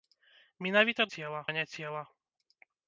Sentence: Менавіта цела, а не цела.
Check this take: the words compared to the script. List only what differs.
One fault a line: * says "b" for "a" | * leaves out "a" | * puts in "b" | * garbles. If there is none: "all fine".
all fine